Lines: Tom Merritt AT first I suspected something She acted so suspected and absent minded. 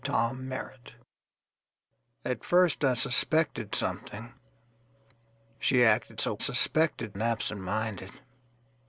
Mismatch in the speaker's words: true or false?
false